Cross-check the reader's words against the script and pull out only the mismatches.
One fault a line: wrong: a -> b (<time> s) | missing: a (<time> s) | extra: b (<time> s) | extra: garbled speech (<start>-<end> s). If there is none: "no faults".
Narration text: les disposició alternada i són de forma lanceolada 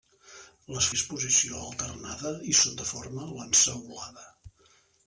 no faults